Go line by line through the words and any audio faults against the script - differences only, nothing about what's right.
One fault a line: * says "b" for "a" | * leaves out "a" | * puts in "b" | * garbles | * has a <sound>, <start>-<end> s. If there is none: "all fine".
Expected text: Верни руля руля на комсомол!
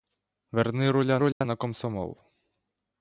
* has a dropout, 1.3-1.4 s